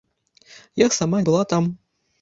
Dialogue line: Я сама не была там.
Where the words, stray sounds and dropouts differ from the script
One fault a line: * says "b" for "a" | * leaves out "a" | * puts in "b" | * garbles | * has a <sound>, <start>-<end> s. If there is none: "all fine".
* leaves out "не"